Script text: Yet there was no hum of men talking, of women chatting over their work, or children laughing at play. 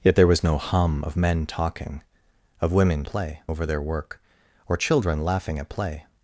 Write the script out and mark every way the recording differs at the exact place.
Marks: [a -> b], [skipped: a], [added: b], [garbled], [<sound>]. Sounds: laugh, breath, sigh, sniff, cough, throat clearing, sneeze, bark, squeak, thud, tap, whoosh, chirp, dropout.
Yet there was no hum of men talking, of women [chatting -> play] over their work, or children laughing at play.